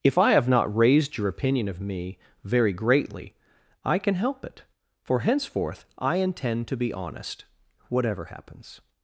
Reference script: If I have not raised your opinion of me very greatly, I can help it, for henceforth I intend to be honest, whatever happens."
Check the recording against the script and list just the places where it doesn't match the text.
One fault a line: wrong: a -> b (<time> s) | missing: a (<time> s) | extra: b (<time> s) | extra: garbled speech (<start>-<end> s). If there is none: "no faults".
no faults